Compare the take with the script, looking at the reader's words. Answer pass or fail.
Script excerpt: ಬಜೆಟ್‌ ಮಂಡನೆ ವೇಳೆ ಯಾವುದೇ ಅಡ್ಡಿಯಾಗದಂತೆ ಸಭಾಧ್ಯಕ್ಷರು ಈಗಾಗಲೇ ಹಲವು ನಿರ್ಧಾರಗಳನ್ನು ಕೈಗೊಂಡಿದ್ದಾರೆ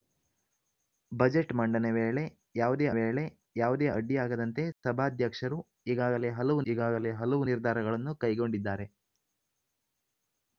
fail